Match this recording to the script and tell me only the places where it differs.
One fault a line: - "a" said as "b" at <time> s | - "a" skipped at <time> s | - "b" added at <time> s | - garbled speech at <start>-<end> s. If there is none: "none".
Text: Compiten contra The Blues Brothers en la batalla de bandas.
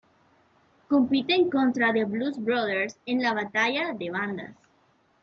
none